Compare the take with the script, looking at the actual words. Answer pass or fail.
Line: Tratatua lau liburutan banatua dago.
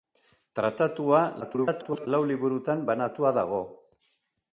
fail